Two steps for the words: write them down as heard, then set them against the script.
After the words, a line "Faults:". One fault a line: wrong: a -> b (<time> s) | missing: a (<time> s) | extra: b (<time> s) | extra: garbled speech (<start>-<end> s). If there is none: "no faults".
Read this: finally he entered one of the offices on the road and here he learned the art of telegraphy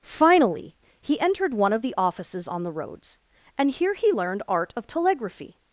finally he entered one of the offices on the roads and here he learned art of telegraphy
Faults:
wrong: road -> roads (2.7 s)
missing: the (4.4 s)